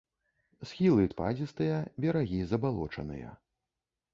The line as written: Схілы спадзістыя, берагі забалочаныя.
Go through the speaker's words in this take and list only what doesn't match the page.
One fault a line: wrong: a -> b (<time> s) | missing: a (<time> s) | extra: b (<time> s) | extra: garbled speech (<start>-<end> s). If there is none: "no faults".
no faults